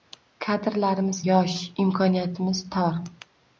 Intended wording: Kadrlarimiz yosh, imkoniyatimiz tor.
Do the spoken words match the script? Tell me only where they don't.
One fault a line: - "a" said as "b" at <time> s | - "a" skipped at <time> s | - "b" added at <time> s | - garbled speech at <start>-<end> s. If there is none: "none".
none